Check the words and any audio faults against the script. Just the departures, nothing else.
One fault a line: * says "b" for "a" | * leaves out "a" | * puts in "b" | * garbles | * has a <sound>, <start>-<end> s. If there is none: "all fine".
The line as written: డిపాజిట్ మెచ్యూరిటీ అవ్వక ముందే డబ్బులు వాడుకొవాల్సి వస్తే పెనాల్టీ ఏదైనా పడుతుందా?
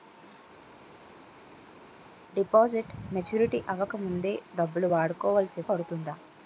* leaves out "వస్తే పెనాల్టీ ఏదైనా"